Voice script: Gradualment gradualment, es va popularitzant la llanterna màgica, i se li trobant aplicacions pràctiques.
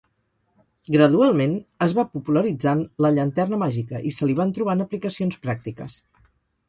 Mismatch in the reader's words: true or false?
true